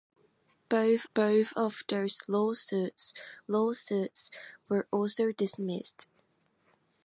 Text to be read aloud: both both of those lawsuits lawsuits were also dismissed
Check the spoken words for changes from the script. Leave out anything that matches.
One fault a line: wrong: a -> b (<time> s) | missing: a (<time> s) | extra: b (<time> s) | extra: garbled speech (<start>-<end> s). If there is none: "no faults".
no faults